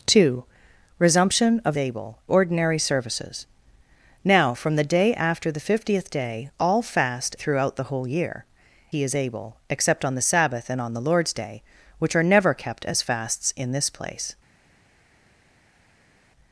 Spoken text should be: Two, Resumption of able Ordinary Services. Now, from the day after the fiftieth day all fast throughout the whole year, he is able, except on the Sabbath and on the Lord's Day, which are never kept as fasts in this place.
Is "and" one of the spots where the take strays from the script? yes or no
no